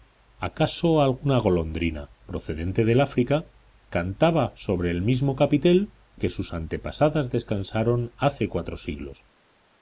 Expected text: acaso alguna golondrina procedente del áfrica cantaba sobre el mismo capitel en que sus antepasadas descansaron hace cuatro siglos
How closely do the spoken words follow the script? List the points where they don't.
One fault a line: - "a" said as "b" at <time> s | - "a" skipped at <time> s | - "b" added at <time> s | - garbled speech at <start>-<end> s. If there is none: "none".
- "en" skipped at 5.9 s